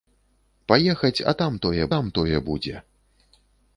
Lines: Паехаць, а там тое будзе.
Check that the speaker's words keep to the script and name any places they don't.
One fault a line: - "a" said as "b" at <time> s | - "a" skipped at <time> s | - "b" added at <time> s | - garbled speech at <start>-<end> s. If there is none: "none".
- "там тое" added at 1.9 s